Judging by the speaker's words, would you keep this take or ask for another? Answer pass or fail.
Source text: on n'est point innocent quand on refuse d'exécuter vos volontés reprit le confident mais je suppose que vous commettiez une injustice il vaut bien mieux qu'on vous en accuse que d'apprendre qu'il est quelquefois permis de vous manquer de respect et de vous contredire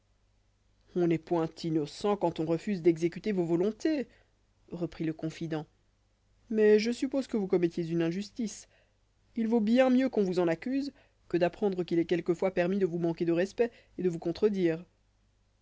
pass